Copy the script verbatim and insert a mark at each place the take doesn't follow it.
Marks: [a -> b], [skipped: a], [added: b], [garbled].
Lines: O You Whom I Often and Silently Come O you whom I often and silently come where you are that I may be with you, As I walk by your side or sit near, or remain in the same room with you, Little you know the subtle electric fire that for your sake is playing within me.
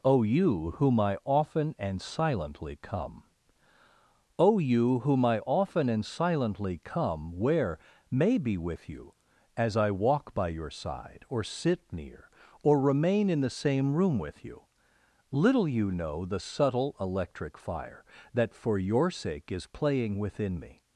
O You Whom I Often and Silently Come O you whom I often and silently come where [skipped: you are that I] may be with you, As I walk by your side or sit near, or remain in the same room with you, Little you know the subtle electric fire that for your sake is playing within me.